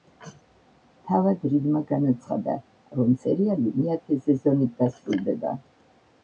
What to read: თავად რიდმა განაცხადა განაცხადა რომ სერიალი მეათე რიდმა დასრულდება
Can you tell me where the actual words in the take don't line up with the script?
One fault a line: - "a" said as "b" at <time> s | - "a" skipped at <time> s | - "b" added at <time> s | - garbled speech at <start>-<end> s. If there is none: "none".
- "განაცხადა" skipped at 2.5 s
- "რიდმა" said as "სეზონით" at 4.3 s